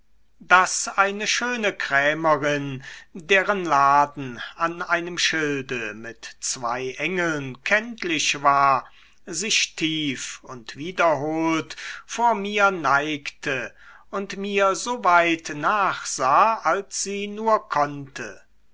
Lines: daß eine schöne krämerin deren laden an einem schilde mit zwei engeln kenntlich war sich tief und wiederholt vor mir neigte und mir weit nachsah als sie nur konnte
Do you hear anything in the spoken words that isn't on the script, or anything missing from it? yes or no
yes